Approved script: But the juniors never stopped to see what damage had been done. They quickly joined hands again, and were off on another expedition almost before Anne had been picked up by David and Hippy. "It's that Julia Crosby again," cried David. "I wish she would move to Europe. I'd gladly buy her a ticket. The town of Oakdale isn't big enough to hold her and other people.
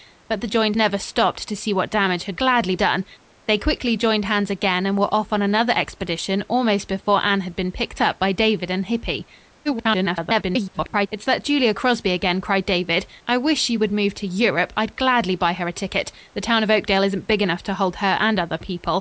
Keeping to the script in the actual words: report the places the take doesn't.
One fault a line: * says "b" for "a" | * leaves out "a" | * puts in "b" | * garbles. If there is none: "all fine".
* says "joined" for "juniors"
* says "gladly" for "been"
* garbles